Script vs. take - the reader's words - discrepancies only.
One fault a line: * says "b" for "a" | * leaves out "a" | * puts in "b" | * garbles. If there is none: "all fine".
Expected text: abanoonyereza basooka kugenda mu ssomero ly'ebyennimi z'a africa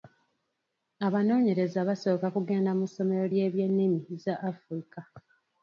all fine